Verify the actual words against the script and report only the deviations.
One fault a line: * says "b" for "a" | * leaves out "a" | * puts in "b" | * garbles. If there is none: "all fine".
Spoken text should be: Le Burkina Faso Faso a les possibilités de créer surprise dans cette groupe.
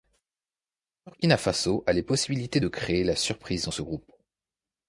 * leaves out "Faso"
* puts in "la"
* says "ce" for "cette"